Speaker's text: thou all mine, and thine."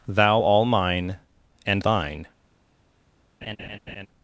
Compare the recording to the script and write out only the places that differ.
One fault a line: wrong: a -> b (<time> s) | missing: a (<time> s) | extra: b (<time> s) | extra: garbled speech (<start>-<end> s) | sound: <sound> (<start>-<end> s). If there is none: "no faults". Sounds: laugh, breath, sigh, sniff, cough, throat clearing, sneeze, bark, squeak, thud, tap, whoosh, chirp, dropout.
sound: laugh (3.4-4.1 s)